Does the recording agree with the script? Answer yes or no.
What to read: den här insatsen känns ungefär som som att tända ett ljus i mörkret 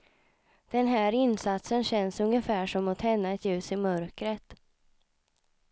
no